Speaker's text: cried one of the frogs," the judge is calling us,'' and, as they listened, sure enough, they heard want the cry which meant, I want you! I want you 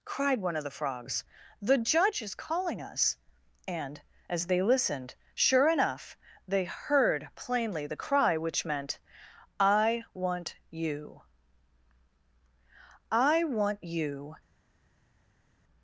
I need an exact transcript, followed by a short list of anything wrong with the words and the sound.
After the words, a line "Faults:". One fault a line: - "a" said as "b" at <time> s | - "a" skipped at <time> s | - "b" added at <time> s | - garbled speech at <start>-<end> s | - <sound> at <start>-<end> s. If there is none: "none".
cried one of the frogs," the judge is calling us,'' and, as they listened, sure enough, they heard plainly the cry which meant, I want you! I want you
Faults:
- "want" said as "plainly" at 7.3 s